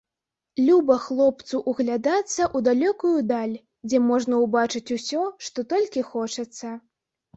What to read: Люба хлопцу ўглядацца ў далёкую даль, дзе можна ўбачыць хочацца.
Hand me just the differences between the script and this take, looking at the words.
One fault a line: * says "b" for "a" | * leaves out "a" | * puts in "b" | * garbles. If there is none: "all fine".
* puts in "усё што толькі"